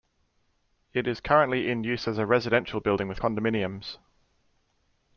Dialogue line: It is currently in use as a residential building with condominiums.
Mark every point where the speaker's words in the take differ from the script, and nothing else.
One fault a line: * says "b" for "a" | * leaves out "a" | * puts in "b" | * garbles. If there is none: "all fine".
all fine